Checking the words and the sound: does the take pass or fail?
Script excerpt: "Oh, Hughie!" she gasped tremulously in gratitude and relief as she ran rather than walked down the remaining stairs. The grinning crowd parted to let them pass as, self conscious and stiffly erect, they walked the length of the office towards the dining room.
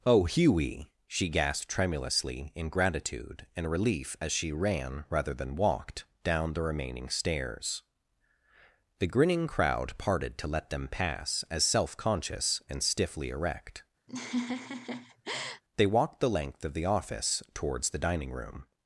fail